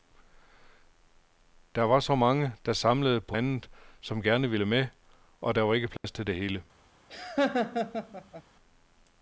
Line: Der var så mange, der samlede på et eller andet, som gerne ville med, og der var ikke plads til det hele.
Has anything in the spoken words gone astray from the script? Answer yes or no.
yes